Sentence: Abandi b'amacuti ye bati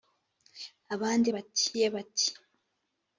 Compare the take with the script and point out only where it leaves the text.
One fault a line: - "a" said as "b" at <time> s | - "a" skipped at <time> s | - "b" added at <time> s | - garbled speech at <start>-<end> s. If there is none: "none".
- "b'amacuti" said as "bati" at 1.3 s